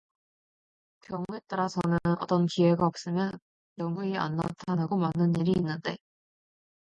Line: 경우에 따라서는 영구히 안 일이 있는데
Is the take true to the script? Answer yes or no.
no